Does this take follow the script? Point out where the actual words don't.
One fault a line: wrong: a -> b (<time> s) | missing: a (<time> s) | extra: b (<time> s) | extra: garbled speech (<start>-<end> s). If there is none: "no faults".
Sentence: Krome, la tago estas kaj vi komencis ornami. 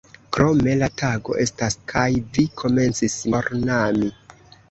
no faults